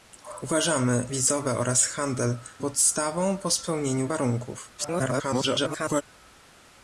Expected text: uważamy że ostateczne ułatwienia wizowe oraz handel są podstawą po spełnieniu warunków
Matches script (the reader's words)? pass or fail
fail